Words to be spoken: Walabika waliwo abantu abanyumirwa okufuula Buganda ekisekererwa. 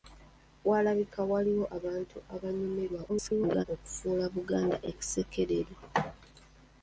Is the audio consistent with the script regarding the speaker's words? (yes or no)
no